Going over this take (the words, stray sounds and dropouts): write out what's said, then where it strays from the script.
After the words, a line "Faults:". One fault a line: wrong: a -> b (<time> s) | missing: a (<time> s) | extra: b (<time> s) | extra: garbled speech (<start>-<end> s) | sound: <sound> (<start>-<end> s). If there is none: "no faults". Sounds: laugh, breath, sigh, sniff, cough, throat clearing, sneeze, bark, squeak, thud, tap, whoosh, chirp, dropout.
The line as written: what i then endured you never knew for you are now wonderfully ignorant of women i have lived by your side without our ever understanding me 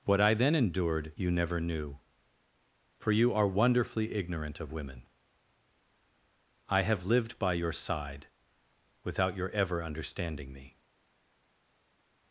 what i then endured you never knew for you are wonderfully ignorant of women i have lived by your side without your ever understanding me
Faults:
missing: now (3.5 s)
wrong: our -> your (9.4 s)